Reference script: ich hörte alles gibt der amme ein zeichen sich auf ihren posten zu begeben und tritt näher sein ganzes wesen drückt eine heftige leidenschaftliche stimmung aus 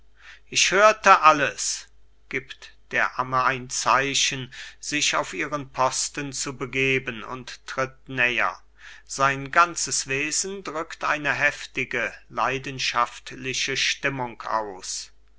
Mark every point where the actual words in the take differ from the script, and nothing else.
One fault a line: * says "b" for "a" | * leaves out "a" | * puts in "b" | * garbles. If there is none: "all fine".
all fine